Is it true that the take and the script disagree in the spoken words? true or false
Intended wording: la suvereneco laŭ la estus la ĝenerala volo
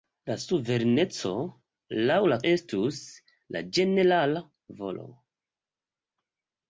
false